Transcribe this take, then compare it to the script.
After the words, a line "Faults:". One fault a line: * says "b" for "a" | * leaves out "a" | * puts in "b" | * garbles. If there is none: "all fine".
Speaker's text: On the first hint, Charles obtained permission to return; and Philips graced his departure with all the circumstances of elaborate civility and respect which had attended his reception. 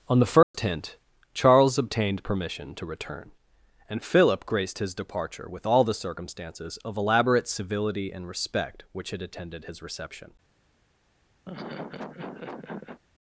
On the first hint, Charles obtained permission to return; and Philip graced his departure with all the circumstances of elaborate civility and respect which had attended his reception.
Faults:
* says "Philip" for "Philips"